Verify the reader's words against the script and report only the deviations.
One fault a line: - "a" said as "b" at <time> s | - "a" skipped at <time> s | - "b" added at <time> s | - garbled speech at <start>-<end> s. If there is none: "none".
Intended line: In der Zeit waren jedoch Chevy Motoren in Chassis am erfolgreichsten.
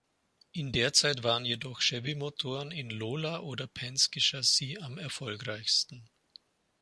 - "Lola oder Penske" added at 2.9 s